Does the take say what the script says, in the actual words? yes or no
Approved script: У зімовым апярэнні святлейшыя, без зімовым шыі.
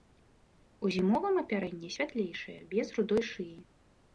no